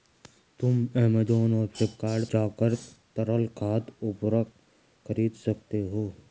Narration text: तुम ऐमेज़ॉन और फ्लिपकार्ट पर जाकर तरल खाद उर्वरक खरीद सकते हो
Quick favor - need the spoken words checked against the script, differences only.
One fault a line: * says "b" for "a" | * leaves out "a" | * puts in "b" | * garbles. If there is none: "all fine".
* leaves out "पर"